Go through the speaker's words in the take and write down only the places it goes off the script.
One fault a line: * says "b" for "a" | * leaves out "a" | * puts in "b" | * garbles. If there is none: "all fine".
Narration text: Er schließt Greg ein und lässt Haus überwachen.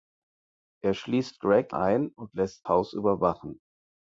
all fine